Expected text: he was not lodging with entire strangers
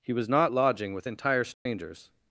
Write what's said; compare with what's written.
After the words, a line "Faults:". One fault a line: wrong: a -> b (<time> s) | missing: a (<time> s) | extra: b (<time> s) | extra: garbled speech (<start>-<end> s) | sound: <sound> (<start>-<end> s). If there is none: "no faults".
he was not lodging with entire strangers
Faults:
sound: dropout (1.5-1.7 s)